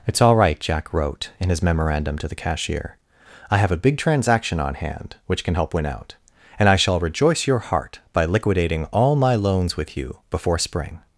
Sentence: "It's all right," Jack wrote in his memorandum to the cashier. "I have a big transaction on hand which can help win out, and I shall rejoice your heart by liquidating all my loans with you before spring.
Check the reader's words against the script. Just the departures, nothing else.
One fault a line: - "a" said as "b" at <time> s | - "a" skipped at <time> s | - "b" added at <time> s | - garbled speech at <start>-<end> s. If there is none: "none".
none